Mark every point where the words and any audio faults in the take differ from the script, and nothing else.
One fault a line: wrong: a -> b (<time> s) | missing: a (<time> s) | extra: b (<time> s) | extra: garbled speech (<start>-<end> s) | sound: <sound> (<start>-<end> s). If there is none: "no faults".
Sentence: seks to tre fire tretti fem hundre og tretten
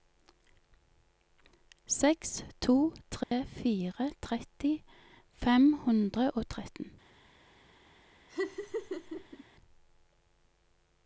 sound: dropout (3.2-3.3 s)
sound: laugh (8.3-9.4 s)